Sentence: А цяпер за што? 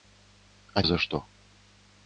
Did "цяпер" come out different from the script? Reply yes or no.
yes